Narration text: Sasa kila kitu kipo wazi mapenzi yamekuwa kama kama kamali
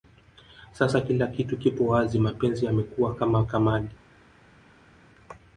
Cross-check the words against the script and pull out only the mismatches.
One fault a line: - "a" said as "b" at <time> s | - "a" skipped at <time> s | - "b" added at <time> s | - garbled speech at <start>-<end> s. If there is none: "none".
- "kama" skipped at 3.5 s